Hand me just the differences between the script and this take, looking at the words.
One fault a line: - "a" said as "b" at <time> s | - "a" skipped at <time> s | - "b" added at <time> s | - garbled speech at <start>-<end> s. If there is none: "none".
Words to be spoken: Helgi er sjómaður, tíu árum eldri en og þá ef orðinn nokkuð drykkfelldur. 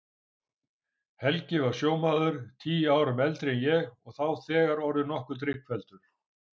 - "er" said as "var" at 1.6 s
- "ég" added at 3.7 s
- "ef" said as "þegar" at 4.5 s